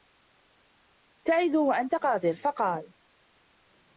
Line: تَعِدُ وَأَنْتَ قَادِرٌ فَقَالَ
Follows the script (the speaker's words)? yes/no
yes